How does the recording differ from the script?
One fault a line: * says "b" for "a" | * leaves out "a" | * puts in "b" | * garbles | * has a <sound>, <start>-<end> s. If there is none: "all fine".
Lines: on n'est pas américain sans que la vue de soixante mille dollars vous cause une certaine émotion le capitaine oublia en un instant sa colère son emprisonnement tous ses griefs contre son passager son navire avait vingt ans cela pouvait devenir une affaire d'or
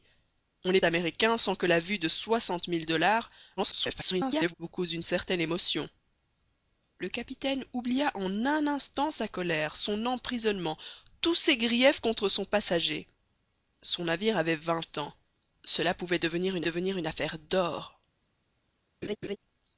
* leaves out "pas"
* garbles
* puts in "devenir une"
* has a laugh, 19.0-19.4 s